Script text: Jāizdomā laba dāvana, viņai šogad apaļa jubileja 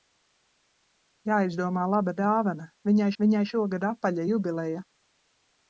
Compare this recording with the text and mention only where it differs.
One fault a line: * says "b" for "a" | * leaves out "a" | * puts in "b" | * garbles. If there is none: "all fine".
* puts in "viņai"